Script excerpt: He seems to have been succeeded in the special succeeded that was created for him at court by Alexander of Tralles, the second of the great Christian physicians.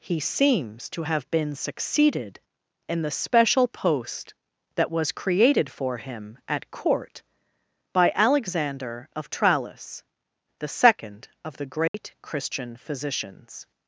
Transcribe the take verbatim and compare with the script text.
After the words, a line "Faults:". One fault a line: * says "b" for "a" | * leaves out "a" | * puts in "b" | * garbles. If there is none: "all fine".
He seems to have been succeeded in the special post that was created for him at court by Alexander of Tralles, the second of the great Christian physicians.
Faults:
* says "post" for "succeeded"